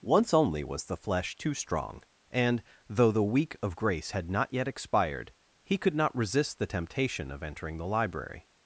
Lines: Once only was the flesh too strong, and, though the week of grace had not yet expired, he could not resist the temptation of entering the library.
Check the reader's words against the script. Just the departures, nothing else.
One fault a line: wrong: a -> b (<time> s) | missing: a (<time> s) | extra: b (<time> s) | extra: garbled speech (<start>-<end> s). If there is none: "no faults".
no faults